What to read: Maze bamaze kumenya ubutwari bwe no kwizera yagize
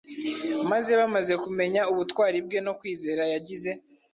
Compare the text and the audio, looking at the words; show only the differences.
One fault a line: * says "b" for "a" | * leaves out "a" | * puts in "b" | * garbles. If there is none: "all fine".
all fine